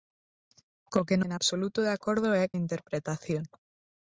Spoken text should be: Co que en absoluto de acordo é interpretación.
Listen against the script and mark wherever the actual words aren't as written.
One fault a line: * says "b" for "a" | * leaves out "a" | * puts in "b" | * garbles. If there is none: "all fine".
all fine